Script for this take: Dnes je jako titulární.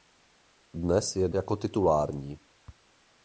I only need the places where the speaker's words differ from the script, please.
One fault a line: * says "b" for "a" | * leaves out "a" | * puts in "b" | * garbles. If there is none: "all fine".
all fine